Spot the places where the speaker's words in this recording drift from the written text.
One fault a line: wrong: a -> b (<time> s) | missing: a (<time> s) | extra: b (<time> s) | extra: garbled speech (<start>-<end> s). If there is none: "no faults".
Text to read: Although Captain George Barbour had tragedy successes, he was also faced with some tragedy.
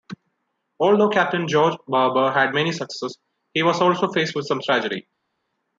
wrong: tragedy -> many (2.5 s)